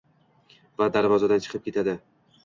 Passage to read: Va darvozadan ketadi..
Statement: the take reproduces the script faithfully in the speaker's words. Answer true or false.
false